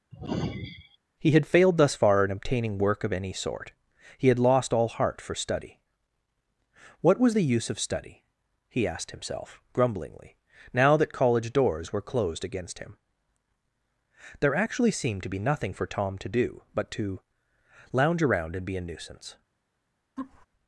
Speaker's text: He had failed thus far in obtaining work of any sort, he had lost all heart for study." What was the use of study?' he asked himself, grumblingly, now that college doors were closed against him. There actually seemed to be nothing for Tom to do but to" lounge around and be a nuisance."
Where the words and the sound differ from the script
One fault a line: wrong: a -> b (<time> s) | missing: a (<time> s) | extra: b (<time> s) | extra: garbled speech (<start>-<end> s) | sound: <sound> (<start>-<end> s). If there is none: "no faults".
sound: sigh (0.1-1.0 s)
sound: laugh (20.2-20.5 s)